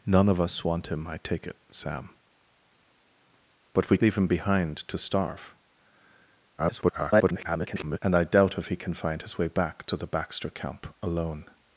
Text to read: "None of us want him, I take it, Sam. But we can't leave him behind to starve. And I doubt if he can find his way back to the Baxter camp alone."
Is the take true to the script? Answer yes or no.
no